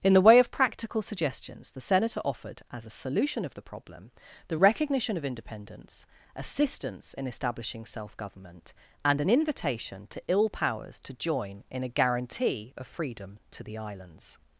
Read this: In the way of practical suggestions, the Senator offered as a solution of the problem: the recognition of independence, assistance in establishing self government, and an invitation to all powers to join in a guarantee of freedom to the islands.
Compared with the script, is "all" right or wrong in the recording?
wrong